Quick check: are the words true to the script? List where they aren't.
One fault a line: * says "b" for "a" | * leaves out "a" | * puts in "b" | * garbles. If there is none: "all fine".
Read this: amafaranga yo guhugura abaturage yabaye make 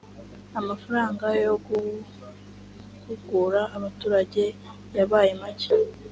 all fine